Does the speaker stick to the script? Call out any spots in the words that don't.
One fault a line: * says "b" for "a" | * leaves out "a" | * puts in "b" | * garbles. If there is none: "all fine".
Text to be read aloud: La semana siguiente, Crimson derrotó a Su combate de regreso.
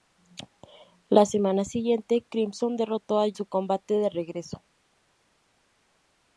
all fine